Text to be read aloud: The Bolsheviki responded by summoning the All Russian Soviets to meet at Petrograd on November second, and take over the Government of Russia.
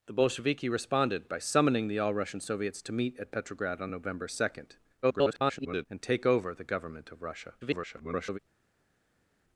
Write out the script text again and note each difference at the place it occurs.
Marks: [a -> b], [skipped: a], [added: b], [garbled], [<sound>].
The Bolsheviki responded by summoning the All Russian Soviets to meet at Petrograd on November second, [garbled] and take over the Government of Russia. [garbled]